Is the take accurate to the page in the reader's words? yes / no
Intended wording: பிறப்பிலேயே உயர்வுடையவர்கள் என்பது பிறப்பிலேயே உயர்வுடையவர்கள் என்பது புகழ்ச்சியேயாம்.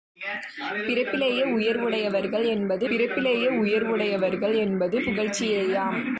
yes